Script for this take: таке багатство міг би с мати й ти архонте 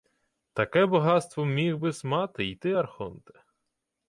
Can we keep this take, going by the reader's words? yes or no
yes